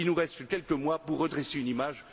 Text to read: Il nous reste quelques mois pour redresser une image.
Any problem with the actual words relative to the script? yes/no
no